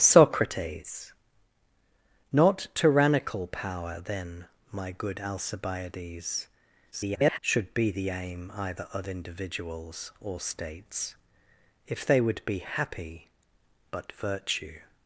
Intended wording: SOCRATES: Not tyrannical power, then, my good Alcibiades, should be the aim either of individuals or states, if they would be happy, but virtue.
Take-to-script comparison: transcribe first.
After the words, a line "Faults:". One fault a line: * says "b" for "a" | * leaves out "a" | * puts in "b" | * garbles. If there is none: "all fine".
SOCRATES: Not tyrannical power, then, my good Alcibiades, [garbled] should be the aim either of individuals or states, if they would be happy, but virtue.
Faults:
* garbles